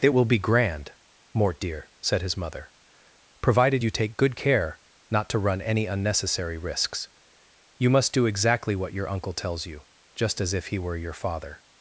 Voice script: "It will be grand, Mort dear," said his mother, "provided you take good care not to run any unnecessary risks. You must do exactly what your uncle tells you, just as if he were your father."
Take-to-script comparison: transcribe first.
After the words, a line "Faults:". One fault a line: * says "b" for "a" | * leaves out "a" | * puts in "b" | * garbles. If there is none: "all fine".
"It will be grand, Mort dear," said his mother, "provided you take good care not to run any unnecessary risks. You must do exactly what your uncle tells you, just as if he were your father."
Faults:
all fine